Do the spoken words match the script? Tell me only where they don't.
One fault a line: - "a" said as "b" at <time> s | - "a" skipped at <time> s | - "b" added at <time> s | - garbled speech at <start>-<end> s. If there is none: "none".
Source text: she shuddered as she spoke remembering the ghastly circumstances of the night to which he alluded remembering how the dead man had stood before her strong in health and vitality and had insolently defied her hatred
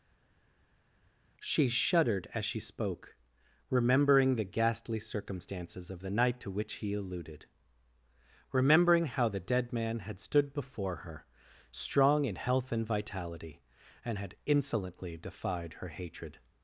none